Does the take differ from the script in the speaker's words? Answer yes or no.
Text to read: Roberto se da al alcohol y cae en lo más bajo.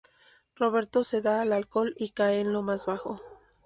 no